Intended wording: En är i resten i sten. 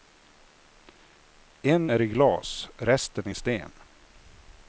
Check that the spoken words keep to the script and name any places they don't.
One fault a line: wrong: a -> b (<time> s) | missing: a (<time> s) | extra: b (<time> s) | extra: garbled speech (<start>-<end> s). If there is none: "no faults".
extra: glas (2.1 s)